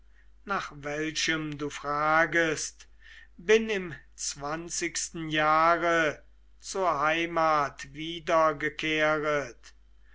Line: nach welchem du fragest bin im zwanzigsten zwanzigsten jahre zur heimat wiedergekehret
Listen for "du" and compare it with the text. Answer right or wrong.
right